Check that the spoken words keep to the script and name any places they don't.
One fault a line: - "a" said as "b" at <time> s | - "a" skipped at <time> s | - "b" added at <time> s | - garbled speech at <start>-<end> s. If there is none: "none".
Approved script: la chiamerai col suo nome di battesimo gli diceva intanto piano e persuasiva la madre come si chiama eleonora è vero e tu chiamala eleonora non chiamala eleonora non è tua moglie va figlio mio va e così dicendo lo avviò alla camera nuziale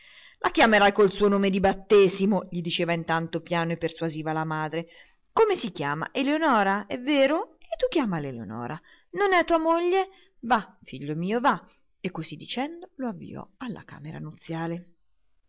- "chiamala eleonora non" skipped at 9.3 s